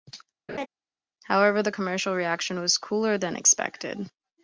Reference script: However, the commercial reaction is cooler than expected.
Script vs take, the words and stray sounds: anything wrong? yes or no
yes